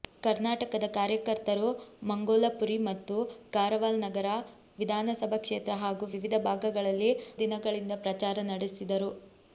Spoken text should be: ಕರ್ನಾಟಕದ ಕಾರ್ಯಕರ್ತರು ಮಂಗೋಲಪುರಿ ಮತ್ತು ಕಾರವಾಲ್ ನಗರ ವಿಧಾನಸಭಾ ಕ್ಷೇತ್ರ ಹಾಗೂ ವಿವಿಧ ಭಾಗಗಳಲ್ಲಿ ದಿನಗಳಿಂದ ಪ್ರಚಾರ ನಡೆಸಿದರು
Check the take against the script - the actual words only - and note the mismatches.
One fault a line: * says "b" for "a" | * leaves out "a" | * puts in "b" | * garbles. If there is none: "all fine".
all fine